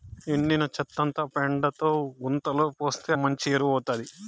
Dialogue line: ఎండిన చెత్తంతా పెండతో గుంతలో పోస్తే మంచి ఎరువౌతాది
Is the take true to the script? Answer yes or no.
yes